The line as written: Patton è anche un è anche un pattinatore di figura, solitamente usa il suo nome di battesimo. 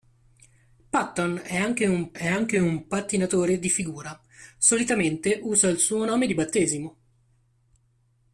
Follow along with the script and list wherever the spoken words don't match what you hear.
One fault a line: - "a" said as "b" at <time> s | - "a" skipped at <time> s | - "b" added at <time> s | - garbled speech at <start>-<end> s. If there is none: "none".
none